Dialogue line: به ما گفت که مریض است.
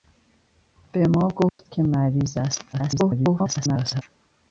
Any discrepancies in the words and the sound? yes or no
yes